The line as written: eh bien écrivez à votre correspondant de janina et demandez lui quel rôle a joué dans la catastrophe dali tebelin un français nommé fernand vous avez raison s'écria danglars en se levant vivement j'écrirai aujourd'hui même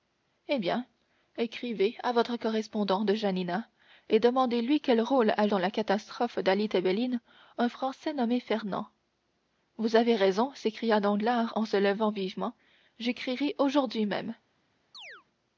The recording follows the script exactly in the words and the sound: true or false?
false